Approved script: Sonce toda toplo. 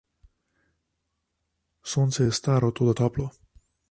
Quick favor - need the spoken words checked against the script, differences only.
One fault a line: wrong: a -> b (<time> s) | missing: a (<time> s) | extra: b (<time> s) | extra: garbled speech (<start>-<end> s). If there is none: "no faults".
extra: je staro (2.2 s)